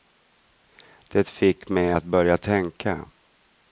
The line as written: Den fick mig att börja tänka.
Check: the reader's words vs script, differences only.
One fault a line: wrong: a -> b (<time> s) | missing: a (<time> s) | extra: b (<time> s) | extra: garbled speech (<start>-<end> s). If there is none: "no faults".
wrong: Den -> Det (1.1 s)